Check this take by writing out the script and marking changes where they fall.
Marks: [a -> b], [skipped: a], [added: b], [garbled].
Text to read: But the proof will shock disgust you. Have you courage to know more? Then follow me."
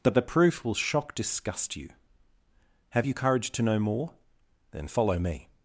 But the proof will shock disgust you. Have you courage to know more? Then follow me."